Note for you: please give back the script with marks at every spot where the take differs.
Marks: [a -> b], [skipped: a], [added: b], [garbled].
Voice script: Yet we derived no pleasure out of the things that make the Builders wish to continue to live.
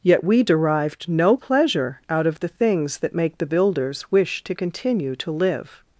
Yet we derived no pleasure out of the things that make the Builders wish to continue to live.